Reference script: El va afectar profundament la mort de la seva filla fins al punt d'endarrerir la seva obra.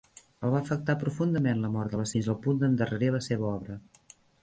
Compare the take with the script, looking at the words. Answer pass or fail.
fail